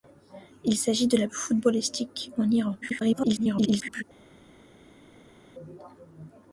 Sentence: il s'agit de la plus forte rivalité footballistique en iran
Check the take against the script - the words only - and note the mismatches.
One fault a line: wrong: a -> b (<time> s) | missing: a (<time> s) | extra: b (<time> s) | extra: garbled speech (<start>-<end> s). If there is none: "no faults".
missing: plus forte rivalité (1.3 s)
extra: garbled speech (2.8-4.0 s)